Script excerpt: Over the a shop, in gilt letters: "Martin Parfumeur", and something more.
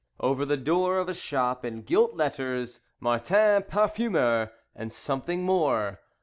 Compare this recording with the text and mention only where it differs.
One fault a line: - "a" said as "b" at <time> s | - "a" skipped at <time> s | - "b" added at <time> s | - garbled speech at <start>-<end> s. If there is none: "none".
- "door of" added at 0.6 s